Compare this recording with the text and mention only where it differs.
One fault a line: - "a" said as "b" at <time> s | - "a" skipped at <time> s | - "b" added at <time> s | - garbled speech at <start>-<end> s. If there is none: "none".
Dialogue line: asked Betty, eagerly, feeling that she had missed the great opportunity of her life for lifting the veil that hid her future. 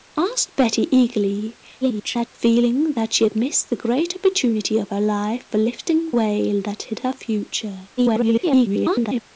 - garbled speech at 1.8-2.3 s
- "the" skipped at 6.1 s
- garbled speech at 8.0-9.2 s